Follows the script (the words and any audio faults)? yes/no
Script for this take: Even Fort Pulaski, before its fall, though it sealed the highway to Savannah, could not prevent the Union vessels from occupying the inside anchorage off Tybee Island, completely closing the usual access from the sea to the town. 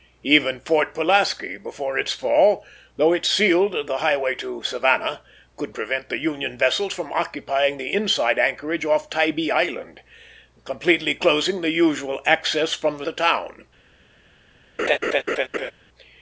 no